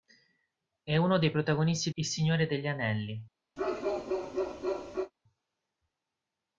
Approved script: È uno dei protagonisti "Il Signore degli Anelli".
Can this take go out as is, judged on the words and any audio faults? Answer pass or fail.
fail